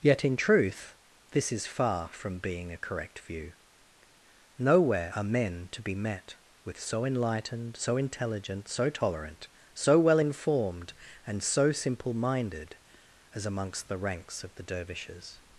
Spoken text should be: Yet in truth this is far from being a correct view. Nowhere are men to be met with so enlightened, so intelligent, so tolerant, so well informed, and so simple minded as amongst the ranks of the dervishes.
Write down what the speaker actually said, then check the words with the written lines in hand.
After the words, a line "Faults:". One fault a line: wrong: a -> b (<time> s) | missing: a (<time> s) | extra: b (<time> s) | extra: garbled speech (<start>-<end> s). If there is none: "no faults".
Yet in truth this is far from being a correct view. Nowhere are men to be met with so enlightened, so intelligent, so tolerant, so well informed, and so simple minded as amongst the ranks of the dervishes.
Faults:
no faults